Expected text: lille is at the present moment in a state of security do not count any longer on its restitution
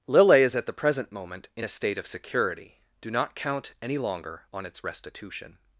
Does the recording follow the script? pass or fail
pass